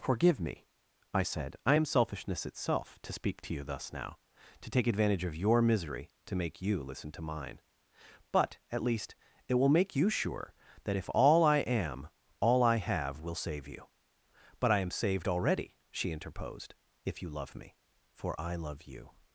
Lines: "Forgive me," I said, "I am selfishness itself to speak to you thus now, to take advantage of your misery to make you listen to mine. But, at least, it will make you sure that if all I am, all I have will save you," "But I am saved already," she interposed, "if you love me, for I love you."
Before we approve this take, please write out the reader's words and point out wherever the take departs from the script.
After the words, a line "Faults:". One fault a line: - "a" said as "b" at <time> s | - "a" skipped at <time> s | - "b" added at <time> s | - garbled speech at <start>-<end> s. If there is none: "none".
"Forgive me," I said, "I am selfishness itself to speak to you thus now, to take advantage of your misery to make you listen to mine. But, at least, it will make you sure that if all I am, all I have will save you," "But I am saved already," she interposed, "if you love me, for I love you."
Faults:
none